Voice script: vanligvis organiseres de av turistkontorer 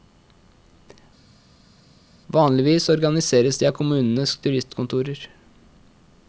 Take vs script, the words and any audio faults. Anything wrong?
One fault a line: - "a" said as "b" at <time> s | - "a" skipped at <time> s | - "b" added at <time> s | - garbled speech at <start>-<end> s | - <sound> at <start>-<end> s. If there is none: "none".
- "kommunenes" added at 3.8 s